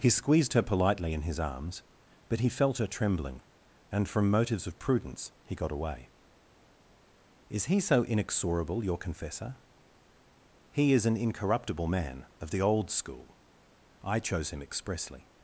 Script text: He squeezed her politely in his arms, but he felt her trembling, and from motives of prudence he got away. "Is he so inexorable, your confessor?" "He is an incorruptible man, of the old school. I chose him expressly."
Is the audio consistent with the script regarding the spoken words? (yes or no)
yes